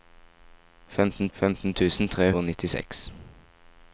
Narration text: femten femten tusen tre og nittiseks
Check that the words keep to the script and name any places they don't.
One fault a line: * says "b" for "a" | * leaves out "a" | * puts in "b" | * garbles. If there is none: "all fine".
all fine